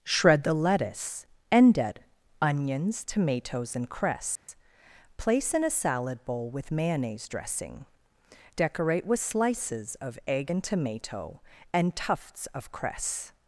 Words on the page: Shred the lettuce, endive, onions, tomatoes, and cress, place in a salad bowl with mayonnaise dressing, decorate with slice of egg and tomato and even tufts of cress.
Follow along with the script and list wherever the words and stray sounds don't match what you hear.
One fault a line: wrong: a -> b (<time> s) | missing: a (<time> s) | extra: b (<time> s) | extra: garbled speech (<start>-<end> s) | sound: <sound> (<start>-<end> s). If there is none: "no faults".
sound: dropout (4.4-4.5 s)
wrong: slice -> slices (9.2 s)
missing: even (12.0 s)